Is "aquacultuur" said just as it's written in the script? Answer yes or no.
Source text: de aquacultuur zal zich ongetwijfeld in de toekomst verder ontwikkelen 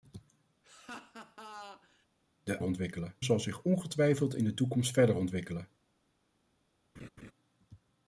no